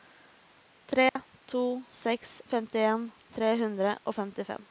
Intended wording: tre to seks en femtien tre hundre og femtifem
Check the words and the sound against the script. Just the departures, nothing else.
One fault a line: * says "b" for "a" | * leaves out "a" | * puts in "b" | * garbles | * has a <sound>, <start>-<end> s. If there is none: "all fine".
* has a dropout, 1.1-1.2 s
* leaves out "en"